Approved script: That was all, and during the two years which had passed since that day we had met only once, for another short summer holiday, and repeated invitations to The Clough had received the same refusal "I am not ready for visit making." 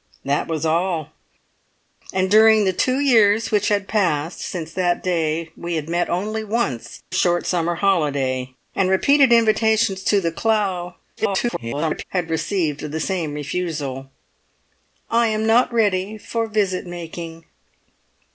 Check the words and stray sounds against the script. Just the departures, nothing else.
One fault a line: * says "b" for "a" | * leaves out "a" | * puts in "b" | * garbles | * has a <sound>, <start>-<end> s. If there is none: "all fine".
* leaves out "for another"
* garbles